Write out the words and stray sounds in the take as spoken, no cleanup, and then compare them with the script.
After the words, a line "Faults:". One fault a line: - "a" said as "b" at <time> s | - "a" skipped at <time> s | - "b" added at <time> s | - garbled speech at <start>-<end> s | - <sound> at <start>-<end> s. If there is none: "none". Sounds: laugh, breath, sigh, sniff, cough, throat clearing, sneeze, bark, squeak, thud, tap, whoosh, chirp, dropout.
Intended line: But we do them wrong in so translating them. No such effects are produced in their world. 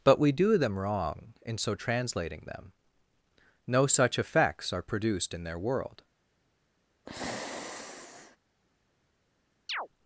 But we do them wrong in so translating them. No such effects are produced in their world.
Faults:
- sigh at 7.0-8.4 s
- chirp at 9.7-9.9 s